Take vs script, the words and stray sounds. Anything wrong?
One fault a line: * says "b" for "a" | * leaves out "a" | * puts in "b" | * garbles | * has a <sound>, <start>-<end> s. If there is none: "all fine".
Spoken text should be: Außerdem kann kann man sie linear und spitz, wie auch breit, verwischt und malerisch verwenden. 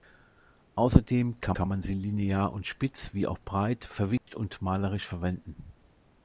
* has a dropout, 4.2-4.3 s